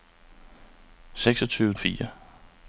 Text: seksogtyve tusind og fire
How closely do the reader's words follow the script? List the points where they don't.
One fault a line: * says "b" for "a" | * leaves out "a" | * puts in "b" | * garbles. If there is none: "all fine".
* leaves out "tusind"